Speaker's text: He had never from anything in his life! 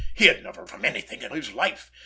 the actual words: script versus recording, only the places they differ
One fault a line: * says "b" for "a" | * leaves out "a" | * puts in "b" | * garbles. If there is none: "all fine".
all fine